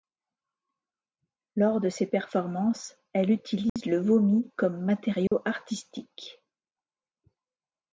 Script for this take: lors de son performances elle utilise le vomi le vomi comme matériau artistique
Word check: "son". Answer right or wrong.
wrong